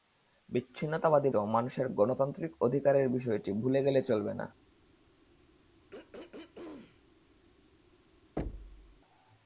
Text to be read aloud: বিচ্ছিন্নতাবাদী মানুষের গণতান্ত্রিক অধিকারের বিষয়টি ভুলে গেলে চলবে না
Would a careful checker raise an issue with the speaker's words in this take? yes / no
no